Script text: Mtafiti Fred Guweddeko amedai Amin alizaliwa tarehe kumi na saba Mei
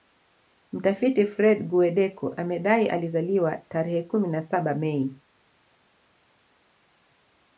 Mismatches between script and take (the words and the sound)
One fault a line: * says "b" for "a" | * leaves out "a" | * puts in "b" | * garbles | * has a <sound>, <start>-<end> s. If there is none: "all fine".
* leaves out "Amin"